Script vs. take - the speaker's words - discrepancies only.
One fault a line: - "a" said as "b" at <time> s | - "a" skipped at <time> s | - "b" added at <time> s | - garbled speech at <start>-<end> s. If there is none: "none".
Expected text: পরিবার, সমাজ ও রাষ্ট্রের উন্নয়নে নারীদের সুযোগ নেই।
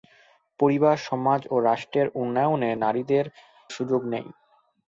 none